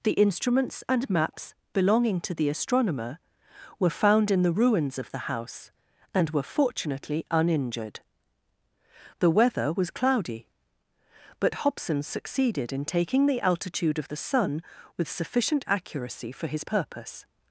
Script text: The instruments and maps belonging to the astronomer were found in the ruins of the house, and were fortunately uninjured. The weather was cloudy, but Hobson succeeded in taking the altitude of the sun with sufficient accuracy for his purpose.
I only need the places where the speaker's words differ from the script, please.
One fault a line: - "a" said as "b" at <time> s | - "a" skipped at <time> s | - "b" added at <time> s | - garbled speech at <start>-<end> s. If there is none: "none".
none